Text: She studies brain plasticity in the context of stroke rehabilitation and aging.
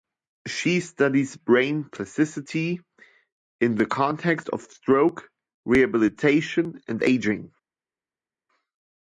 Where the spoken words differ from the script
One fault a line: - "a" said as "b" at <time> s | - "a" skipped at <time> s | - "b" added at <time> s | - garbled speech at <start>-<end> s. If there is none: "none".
none